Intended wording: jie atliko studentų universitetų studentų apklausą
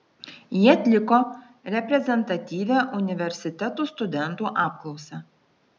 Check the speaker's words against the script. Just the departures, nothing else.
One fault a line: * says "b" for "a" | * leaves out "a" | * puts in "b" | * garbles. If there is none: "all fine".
* says "reprezentatyvią" for "studentų"